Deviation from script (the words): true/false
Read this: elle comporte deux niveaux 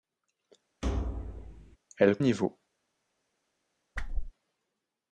true